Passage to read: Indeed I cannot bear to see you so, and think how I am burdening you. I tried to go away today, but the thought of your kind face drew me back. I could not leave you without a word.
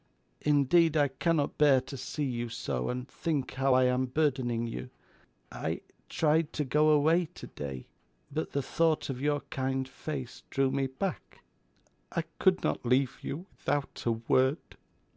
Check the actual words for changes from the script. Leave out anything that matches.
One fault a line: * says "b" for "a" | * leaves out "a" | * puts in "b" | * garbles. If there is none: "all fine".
all fine